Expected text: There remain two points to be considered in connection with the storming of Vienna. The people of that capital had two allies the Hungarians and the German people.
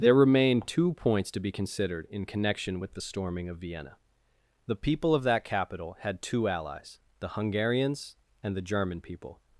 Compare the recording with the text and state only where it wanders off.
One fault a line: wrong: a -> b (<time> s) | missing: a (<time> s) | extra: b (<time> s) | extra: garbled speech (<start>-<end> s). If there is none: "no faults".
no faults